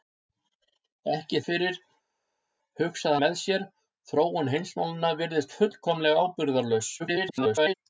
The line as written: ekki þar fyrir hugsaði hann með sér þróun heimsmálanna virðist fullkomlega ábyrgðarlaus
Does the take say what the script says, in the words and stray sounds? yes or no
no